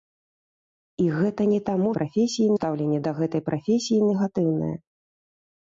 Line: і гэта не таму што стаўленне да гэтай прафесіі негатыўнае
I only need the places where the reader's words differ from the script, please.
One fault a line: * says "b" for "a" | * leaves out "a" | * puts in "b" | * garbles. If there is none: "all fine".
* says "прафесіі" for "што"